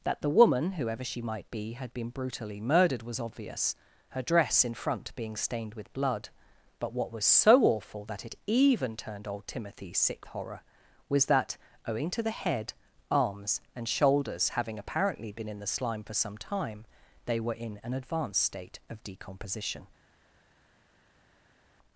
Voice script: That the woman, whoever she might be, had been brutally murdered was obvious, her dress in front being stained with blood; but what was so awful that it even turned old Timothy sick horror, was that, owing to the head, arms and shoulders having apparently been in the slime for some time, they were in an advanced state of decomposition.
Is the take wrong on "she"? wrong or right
right